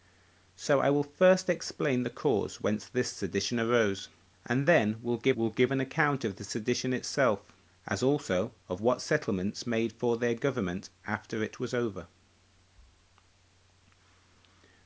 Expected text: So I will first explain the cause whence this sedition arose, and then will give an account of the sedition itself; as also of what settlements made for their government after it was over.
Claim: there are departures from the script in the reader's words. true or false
true